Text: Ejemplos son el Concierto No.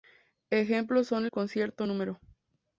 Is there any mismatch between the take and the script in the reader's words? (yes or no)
no